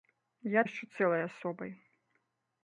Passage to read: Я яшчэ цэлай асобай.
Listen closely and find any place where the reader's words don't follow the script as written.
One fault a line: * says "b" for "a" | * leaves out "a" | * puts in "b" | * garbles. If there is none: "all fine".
all fine